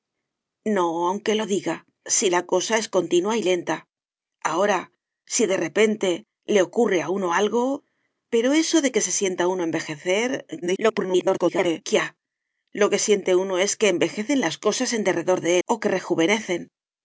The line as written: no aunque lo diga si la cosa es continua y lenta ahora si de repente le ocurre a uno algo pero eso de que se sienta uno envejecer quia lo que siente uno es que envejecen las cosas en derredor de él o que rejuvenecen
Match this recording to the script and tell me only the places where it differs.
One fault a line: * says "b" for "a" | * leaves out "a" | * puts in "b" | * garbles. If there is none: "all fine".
* garbles
* leaves out "él"